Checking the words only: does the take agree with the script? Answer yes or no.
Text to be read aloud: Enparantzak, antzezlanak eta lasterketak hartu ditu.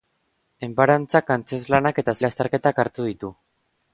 yes